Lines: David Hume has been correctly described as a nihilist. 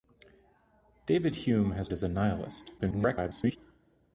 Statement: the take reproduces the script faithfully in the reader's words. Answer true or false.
false